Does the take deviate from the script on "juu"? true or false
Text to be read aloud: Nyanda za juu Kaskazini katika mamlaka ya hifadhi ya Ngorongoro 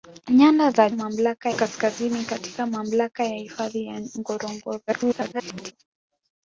true